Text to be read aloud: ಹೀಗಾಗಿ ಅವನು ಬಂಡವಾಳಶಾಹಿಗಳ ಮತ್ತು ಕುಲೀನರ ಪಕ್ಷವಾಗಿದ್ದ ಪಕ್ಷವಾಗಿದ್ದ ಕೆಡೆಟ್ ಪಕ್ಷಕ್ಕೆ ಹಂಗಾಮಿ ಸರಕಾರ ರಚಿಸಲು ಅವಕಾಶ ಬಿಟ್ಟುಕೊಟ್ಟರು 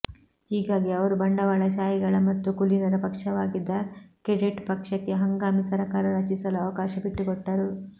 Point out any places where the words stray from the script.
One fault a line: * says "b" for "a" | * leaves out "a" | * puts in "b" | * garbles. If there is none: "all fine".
* says "ಅವರು" for "ಅವನು"
* leaves out "ಪಕ್ಷವಾಗಿದ್ದ"